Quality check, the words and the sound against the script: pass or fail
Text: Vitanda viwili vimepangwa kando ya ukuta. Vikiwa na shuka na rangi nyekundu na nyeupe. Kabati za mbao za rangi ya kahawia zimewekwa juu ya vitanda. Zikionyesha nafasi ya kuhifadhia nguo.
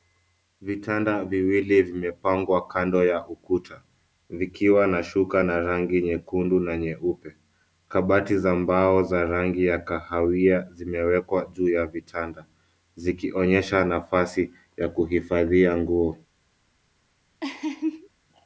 fail